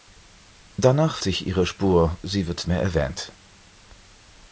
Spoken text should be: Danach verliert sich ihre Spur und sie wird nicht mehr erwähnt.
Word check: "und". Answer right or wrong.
wrong